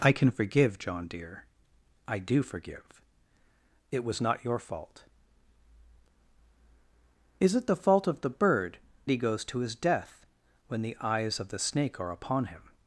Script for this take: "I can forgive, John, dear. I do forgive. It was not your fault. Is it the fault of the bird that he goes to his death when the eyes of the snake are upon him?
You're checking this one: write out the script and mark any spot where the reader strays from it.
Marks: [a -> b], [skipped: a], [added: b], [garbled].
"I can forgive, John, dear. I do forgive. It was not your fault. Is it the fault of the bird [skipped: that] he goes to his death when the eyes of the snake are upon him?